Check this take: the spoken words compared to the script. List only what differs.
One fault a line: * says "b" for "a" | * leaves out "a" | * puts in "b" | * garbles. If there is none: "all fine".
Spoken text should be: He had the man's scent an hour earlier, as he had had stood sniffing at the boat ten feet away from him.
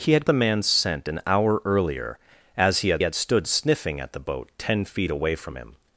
all fine